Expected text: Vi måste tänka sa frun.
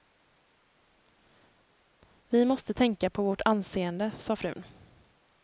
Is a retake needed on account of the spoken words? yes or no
yes